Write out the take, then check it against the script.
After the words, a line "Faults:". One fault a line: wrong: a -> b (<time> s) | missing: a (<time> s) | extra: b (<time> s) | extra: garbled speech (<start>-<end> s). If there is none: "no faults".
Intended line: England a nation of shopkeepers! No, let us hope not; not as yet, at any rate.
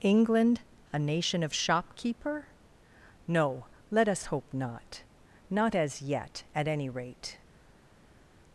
England a nation of shopkeeper! No, let us hope not; not as yet, at any rate.
Faults:
wrong: shopkeepers -> shopkeeper (1.5 s)